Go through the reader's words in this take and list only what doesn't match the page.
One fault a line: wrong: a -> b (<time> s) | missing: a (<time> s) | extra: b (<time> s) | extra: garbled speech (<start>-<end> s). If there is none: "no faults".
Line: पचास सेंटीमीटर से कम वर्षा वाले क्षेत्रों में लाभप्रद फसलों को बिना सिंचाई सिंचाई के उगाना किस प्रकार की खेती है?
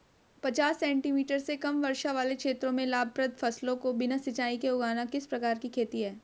missing: सिंचाई (4.6 s)